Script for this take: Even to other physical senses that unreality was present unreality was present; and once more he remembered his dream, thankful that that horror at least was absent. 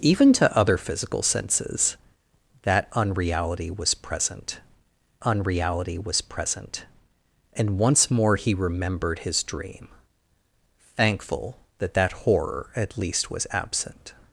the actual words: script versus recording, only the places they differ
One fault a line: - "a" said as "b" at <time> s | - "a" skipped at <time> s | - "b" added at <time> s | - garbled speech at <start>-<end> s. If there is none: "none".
none